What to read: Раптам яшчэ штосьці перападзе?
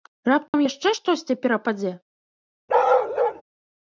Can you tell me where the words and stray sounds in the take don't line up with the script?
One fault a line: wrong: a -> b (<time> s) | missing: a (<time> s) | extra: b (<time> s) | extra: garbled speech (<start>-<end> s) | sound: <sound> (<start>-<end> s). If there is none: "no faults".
sound: dropout (0.5-0.5 s)
sound: bark (2.7-3.4 s)